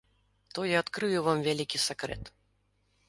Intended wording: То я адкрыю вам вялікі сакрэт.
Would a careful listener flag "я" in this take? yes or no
no